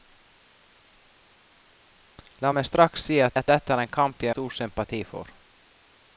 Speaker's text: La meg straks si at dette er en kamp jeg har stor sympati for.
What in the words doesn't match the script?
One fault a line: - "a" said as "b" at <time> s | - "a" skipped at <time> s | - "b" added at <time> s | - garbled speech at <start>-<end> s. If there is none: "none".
- "at" added at 3.4 s
- "har" skipped at 4.3 s